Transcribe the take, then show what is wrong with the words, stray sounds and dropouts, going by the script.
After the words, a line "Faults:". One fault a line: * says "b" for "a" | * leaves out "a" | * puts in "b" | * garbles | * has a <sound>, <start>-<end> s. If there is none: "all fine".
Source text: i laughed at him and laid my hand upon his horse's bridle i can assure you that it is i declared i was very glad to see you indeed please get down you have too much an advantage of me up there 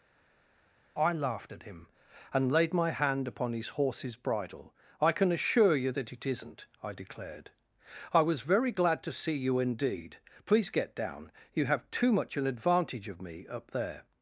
i laughed at him and laid my hand upon his horse's bridle i can assure you that it isn't i declared i was very glad to see you indeed please get down you have too much an advantage of me up there
Faults:
* says "isn't" for "is"